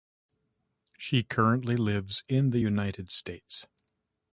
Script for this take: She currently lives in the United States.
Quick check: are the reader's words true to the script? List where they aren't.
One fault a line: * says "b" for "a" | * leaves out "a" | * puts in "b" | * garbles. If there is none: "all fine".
all fine